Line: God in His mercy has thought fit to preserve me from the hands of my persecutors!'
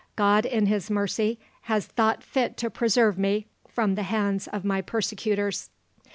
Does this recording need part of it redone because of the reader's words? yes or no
no